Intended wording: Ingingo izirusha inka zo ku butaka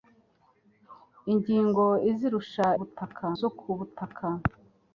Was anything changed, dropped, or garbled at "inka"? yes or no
yes